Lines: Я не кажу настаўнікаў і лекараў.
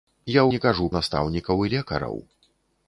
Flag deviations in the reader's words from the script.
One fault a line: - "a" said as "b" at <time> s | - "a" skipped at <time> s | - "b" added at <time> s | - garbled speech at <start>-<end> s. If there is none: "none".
none